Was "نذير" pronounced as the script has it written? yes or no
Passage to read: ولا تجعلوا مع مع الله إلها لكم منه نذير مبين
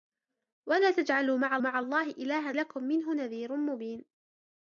yes